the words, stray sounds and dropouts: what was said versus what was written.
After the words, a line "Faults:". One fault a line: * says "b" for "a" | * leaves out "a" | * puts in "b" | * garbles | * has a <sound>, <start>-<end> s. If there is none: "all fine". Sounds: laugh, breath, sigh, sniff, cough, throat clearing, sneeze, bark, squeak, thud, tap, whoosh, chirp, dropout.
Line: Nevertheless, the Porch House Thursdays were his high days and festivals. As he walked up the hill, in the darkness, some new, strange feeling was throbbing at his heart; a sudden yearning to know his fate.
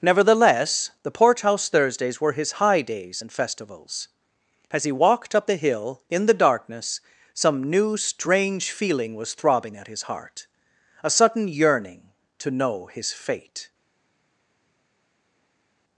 Nevertheless, the Porch House Thursdays were his high days and festivals. As he walked up the hill, in the darkness, some new, strange feeling was throbbing at his heart; a sudden yearning to know his fate.
Faults:
all fine